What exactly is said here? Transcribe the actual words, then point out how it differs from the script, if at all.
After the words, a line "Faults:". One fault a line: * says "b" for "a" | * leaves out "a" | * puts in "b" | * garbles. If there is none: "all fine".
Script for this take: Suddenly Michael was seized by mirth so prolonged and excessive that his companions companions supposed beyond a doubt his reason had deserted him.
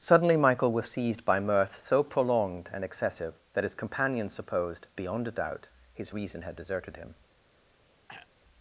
Suddenly Michael was seized by mirth so prolonged and excessive that his companions supposed beyond a doubt his reason had deserted him.
Faults:
* leaves out "companions"